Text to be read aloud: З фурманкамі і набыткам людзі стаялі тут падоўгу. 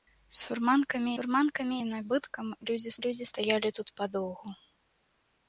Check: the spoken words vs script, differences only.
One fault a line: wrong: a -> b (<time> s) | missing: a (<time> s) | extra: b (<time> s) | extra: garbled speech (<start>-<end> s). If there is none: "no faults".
extra: фурманкамі (1.1 s)
extra: людзі (3.1 s)